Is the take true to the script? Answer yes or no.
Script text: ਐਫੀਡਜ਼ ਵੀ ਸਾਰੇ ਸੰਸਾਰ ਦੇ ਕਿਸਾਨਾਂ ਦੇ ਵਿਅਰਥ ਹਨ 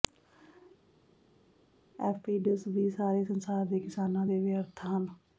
yes